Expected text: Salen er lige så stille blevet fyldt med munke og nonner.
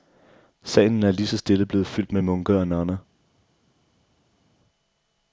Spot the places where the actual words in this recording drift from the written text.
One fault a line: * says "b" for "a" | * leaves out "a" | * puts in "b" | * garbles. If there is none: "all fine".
all fine